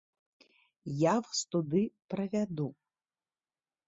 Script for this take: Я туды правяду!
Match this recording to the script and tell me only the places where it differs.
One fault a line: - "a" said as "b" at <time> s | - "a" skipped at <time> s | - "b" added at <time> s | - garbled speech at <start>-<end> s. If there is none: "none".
- "вас" added at 1.2 s